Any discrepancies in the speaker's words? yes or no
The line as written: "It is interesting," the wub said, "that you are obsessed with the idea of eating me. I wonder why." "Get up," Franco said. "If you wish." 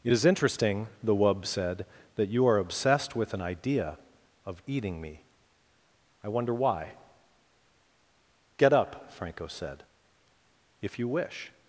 yes